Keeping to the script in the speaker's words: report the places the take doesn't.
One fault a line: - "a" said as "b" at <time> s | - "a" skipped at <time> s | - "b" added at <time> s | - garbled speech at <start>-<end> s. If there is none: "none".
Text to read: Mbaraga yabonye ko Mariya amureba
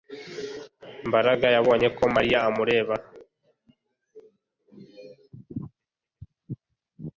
none